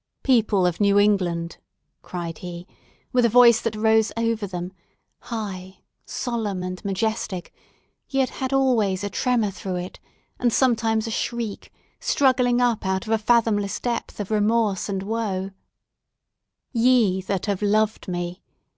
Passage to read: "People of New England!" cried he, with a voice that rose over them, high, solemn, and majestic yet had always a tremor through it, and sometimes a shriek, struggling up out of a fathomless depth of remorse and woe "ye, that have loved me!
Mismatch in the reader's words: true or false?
false